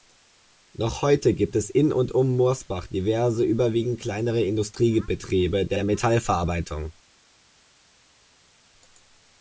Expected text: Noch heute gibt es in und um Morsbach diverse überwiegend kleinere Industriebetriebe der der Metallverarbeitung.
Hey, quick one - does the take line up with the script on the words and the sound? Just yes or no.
yes